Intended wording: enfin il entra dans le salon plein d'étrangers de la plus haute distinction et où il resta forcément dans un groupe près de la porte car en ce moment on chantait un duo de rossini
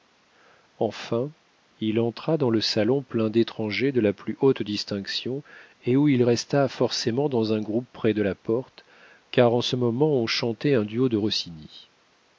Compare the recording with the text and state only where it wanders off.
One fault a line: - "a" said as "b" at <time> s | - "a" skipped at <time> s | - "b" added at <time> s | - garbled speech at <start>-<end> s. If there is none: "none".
none